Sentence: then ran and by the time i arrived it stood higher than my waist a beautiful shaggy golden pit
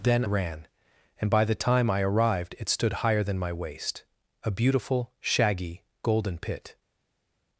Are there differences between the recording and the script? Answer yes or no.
no